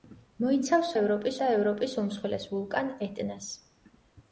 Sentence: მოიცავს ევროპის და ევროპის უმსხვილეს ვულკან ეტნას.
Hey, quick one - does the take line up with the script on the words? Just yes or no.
yes